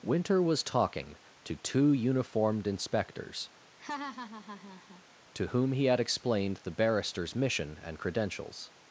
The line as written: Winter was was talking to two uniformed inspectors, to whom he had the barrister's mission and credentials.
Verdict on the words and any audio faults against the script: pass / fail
fail